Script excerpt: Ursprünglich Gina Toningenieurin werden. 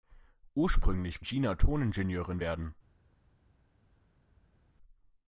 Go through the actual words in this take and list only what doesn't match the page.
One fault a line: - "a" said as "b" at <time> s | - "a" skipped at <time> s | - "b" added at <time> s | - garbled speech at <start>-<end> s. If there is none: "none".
none